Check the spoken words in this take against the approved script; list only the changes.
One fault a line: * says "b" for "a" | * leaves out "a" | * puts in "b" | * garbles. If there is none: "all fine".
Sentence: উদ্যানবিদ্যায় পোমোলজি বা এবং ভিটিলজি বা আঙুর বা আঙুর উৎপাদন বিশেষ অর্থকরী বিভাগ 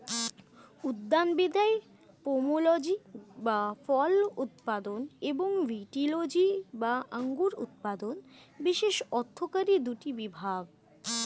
* puts in "ফল উৎপাদন"
* leaves out "বা আঙুর"
* puts in "দুটি"